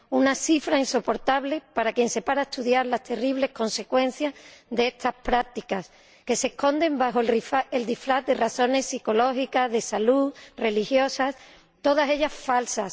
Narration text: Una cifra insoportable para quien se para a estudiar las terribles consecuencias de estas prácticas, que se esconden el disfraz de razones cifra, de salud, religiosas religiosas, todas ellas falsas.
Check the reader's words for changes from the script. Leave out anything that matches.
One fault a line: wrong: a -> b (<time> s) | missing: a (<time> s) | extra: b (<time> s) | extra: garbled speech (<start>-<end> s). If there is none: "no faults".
extra: bajo (7.0 s)
wrong: cifra -> psicológicas (8.9 s)
missing: religiosas (11.3 s)